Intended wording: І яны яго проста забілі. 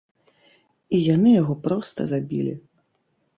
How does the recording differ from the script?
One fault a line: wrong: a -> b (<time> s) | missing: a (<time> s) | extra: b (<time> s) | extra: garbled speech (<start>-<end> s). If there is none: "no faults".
no faults